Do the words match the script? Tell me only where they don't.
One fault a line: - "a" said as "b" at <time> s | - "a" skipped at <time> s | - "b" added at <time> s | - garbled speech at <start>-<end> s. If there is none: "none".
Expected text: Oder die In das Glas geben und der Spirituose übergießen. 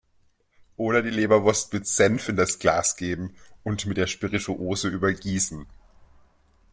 - "Leberwurst mit Senf" added at 1.1 s
- "mit" added at 3.9 s